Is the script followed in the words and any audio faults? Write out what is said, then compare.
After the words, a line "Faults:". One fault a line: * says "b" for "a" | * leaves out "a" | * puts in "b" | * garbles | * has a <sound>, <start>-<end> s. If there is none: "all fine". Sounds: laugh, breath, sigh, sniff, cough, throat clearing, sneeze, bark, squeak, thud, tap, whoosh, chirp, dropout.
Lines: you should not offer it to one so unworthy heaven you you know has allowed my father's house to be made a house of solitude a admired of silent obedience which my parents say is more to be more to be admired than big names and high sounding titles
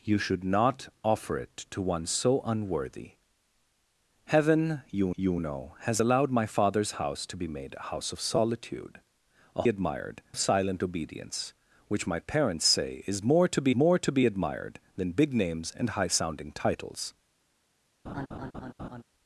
you should not offer it to one so unworthy heaven you you know has allowed my father's house to be made a house of solitude a admired of silent obedience which my parents say is more to be more to be admired than big names and high sounding titles
Faults:
* has a laugh, 18.0-19.0 s